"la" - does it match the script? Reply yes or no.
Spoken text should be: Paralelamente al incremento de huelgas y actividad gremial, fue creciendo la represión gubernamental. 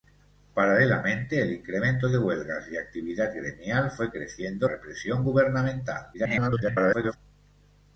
no